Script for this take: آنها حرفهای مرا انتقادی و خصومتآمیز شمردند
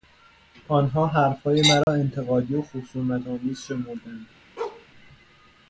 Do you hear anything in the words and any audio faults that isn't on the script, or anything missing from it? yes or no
yes